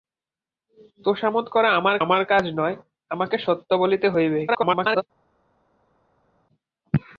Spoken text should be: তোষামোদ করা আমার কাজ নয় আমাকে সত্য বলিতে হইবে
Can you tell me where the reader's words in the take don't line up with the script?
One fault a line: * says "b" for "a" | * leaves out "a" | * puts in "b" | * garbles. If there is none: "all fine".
* puts in "আমার"
* garbles